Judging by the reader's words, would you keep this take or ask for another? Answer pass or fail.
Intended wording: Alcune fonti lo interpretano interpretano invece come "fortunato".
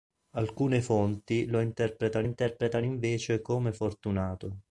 pass